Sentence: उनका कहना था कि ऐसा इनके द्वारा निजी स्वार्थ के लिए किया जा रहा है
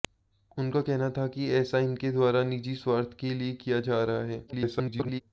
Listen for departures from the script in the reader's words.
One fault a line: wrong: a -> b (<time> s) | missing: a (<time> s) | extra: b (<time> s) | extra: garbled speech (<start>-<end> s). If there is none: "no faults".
extra: garbled speech (4.5-5.2 s)